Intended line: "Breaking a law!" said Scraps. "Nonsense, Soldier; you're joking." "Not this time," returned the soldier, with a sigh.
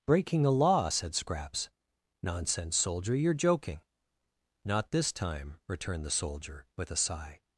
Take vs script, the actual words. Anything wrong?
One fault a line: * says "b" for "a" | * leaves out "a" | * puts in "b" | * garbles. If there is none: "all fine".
all fine